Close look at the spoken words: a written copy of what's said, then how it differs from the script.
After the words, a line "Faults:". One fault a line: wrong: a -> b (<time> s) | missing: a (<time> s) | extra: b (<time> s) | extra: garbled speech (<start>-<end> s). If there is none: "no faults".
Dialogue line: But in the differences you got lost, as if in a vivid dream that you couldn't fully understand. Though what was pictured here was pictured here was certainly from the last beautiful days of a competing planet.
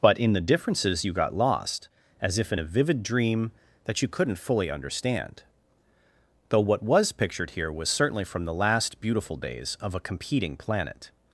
But in the differences you got lost, as if in a vivid dream that you couldn't fully understand. Though what was pictured here was certainly from the last beautiful days of a competing planet.
Faults:
missing: pictured here was (7.9 s)